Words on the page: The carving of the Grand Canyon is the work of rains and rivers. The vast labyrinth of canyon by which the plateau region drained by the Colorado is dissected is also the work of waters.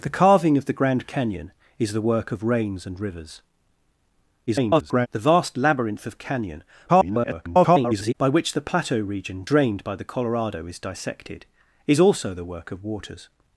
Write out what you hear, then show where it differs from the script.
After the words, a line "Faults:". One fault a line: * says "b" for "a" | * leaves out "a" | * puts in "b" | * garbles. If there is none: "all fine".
The carving of the Grand Canyon is the work of rains and rivers. [garbled] The vast labyrinth of canyon [garbled] by which the plateau region drained by the Colorado is dissected is also the work of waters.
Faults:
* garbles
* garbles